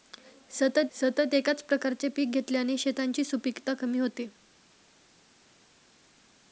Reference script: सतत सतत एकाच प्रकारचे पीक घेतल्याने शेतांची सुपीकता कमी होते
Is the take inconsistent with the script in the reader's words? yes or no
no